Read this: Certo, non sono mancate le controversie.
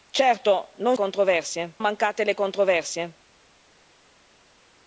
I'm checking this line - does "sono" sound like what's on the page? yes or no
no